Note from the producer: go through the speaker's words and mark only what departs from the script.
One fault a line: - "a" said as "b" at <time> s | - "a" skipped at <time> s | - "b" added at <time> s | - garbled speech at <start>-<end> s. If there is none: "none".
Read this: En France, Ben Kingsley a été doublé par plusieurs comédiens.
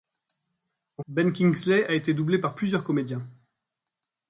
- "France" skipped at 1.0 s